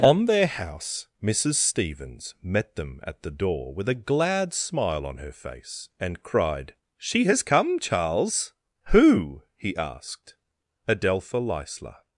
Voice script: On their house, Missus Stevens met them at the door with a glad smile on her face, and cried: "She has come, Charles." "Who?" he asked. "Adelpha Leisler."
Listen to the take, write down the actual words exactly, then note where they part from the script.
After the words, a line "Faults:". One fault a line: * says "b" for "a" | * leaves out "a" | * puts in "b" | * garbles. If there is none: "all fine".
On their house, Missus Stevens met them at the door with a glad smile on her face, and cried: "She has come, Charles." "Who?" he asked. "Adelpha Leisler."
Faults:
all fine